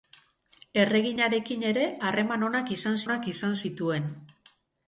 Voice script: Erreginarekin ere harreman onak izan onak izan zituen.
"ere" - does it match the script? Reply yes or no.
yes